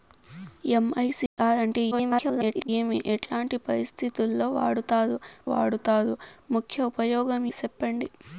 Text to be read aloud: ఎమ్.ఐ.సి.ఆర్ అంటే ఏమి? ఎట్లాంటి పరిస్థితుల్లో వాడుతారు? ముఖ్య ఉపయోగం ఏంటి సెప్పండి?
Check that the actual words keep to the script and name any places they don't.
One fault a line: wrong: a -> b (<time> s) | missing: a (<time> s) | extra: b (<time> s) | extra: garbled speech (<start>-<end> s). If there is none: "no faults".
extra: garbled speech (1.9-2.7 s)
extra: వాడుతారు (5.5 s)
missing: ఏంటి (7.4 s)